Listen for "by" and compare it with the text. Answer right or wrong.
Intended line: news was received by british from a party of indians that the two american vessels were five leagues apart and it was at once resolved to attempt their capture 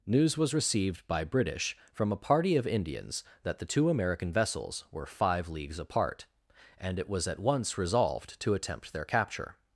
right